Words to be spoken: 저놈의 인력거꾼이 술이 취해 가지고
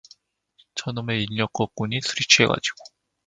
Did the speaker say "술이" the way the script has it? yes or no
yes